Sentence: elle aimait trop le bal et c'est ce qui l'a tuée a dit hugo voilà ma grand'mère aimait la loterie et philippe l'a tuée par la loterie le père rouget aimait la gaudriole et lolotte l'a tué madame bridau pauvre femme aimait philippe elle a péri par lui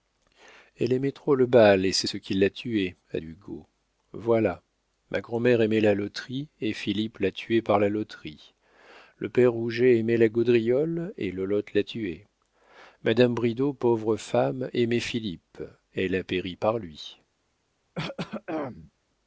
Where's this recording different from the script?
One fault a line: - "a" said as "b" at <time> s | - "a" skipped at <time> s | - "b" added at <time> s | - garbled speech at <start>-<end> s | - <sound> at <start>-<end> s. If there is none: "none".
- "dit" skipped at 3.2 s
- throat clearing at 17.9-18.9 s